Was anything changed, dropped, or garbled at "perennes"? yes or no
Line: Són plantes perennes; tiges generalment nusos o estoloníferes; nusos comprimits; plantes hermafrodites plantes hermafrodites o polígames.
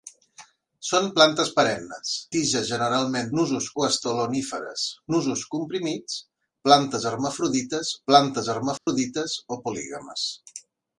no